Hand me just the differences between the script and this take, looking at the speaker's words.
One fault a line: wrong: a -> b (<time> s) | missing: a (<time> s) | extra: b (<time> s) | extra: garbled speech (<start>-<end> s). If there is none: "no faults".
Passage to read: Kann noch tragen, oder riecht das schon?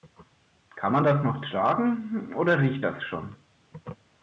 extra: man das (0.9 s)